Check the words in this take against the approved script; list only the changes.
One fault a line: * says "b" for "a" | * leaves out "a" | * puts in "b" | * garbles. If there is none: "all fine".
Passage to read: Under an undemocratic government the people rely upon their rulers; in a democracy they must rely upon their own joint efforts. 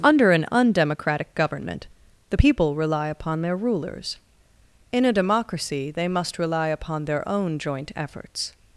all fine